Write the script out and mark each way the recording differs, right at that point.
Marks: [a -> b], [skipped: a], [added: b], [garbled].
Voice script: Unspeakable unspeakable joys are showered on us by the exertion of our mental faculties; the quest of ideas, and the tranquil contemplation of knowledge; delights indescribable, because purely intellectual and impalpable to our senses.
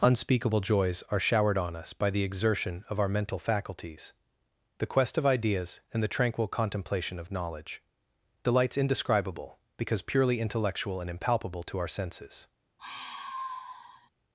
Unspeakable [skipped: unspeakable] joys are showered on us by the exertion of our mental faculties; the quest of ideas, and the tranquil contemplation of knowledge; delights indescribable, because purely intellectual and impalpable to our senses.